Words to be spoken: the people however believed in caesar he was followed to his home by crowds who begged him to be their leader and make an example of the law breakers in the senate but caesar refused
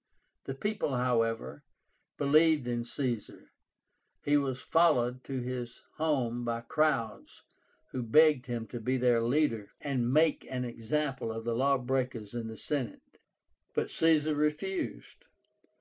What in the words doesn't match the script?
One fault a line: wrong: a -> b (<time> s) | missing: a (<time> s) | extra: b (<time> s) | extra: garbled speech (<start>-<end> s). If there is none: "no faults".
no faults